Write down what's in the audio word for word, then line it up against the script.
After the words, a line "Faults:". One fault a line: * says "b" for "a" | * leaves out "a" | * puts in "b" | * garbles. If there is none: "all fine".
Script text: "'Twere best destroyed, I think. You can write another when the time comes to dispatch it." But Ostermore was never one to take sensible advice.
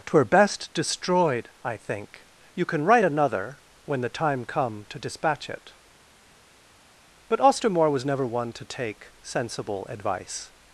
"'Twere best destroyed, I think. You can write another when the time come to dispatch it." But Ostermore was never one to take sensible advice.
Faults:
* says "come" for "comes"